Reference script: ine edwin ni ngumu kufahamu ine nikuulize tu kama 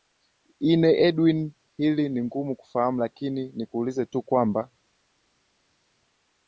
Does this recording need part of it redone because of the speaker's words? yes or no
yes